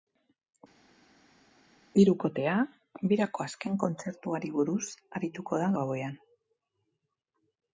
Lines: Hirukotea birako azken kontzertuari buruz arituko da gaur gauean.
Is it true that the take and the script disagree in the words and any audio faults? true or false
true